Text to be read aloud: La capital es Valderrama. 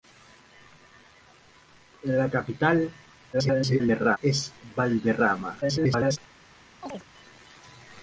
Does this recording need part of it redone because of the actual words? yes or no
yes